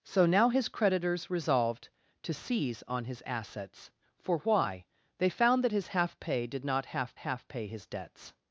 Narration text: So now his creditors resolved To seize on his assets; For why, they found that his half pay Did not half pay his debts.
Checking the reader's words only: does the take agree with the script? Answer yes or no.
no